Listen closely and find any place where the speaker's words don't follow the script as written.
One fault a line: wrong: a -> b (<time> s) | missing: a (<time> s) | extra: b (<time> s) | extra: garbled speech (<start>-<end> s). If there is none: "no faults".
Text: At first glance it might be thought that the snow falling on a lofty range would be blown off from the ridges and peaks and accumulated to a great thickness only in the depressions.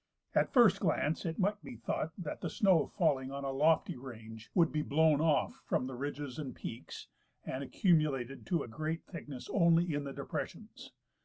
no faults